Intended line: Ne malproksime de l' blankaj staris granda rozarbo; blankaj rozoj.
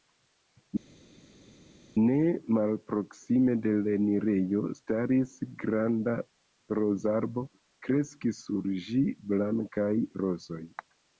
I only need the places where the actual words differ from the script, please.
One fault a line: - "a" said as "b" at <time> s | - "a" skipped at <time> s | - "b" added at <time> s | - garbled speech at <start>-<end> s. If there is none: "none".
- "blankaj" said as "enirejo" at 4.0 s
- "kreskis sur ĝi" added at 7.9 s